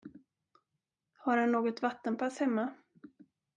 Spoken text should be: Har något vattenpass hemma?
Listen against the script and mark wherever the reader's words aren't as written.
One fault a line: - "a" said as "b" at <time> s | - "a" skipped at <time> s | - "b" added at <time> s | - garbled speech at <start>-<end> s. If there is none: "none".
- "han" added at 1.4 s